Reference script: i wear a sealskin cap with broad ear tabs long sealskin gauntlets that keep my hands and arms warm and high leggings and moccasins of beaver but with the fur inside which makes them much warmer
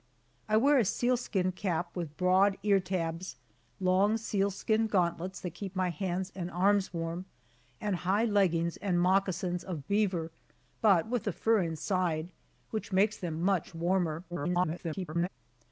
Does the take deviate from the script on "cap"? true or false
false